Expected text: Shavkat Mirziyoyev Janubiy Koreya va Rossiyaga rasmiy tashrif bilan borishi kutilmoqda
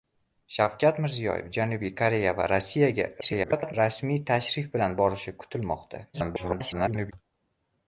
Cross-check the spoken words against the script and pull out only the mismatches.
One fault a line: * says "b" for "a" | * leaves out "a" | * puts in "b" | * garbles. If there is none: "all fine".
* garbles
* garbles